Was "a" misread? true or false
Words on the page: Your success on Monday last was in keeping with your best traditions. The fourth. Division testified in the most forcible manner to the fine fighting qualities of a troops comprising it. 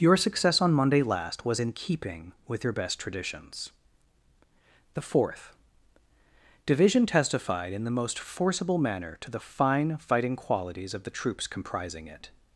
true